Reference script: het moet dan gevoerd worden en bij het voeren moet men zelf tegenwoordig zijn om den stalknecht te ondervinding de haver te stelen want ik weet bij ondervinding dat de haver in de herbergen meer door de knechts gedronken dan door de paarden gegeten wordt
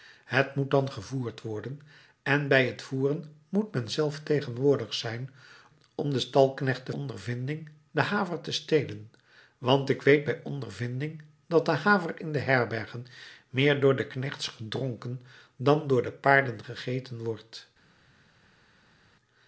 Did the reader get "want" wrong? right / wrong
right